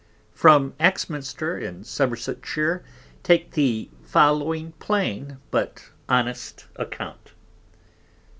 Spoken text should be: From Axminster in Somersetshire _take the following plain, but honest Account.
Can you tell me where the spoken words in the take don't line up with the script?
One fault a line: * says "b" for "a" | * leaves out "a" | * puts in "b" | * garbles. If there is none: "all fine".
all fine